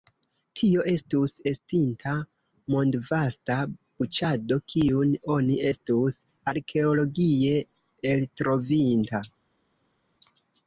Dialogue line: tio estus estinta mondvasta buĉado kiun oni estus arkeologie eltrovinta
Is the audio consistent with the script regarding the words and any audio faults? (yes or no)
yes